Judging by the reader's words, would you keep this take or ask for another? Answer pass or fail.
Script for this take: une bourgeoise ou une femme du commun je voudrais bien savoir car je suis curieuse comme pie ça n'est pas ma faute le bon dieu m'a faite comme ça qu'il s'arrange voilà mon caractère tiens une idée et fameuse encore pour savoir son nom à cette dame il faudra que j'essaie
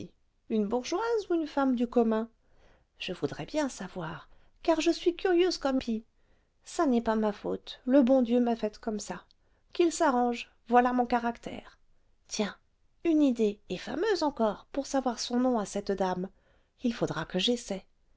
pass